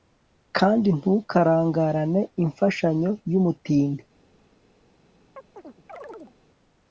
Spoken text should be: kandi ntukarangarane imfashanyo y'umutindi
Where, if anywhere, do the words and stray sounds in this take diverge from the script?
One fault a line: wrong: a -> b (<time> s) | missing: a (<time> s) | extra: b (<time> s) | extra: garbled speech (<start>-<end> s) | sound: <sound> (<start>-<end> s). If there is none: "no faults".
sound: chirp (5.4-6.4 s)